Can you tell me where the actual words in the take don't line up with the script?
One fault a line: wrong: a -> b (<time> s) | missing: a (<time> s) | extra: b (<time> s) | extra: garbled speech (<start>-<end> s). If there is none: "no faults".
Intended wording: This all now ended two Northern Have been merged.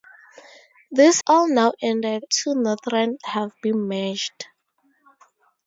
no faults